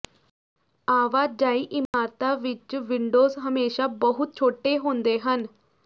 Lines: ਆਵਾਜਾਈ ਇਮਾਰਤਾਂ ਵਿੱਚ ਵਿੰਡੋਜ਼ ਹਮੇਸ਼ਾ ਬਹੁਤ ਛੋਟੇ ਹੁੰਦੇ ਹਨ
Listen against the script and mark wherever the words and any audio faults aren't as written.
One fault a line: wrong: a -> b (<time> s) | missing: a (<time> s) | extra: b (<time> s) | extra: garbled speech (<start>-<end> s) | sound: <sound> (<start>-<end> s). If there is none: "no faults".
sound: dropout (1.9-1.9 s)